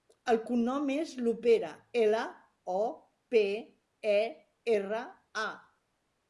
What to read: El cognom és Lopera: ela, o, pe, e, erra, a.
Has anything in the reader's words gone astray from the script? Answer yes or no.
no